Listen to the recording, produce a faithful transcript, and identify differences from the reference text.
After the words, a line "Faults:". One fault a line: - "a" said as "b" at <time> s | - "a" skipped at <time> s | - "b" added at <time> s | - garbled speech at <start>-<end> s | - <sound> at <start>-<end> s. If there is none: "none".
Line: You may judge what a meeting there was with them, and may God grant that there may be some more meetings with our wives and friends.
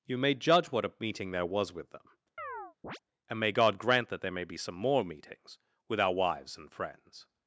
You may judge what a meeting there was with them, and may God grant that there may be some more meetings with our wives and friends.
Faults:
- chirp at 2.4-3.0 s